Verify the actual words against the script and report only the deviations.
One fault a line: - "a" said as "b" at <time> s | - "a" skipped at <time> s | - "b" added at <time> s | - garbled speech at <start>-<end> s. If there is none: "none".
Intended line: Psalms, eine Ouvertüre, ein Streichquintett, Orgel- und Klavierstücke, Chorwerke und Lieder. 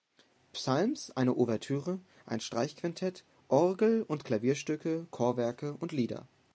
none